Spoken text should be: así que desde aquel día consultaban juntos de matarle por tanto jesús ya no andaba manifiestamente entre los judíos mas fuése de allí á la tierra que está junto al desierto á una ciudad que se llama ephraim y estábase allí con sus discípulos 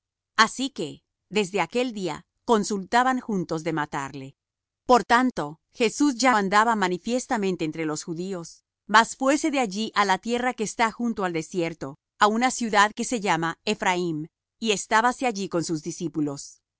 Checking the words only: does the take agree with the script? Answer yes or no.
no